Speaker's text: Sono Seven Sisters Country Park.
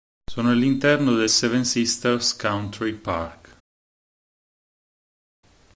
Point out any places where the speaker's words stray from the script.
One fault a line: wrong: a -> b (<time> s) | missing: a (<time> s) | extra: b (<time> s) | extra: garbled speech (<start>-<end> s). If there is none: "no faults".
extra: all'interno del (0.5 s)